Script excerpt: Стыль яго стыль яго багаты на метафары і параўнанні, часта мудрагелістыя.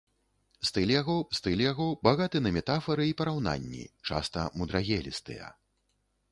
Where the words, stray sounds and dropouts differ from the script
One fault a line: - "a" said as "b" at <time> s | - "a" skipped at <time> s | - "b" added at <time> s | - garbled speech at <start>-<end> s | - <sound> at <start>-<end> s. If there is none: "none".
none